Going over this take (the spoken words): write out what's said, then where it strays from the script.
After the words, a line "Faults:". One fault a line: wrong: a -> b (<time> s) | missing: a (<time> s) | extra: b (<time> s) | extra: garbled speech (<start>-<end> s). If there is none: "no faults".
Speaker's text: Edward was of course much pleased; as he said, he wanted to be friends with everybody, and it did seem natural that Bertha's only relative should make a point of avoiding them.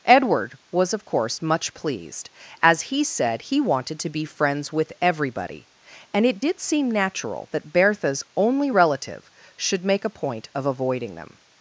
Edward was of course much pleased; as he said, he wanted to be friends with everybody, and it did seem natural that Bertha's only relative should make a point of avoiding them.
Faults:
no faults